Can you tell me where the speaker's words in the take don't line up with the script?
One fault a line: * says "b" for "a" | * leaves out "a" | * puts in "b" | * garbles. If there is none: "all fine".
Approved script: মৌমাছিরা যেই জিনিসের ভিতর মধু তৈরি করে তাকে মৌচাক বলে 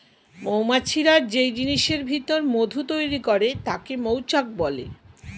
all fine